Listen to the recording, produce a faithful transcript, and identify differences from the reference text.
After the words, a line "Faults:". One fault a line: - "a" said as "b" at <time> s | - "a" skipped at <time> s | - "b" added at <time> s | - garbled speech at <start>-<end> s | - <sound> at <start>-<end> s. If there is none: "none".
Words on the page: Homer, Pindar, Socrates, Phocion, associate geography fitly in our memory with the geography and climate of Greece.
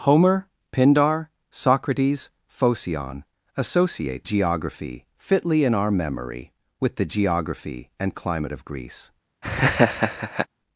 Homer, Pindar, Socrates, Phocion, associate geography fitly in our memory with the geography and climate of Greece.
Faults:
- laugh at 9.4-10.5 s